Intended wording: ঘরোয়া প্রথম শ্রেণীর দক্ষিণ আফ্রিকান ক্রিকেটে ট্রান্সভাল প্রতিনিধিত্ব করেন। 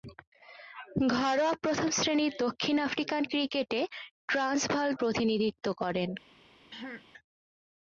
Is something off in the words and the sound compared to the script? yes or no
yes